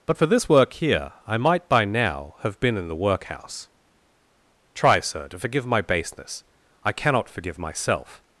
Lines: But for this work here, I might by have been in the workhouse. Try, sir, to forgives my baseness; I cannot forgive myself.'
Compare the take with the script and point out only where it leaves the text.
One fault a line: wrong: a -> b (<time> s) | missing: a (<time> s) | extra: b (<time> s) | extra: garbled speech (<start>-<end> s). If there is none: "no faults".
extra: now (1.9 s)
wrong: forgives -> forgive (5.4 s)